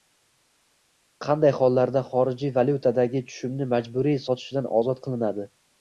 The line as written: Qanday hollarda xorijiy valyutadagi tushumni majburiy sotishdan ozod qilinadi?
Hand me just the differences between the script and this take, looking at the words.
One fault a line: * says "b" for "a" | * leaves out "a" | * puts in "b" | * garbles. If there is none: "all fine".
all fine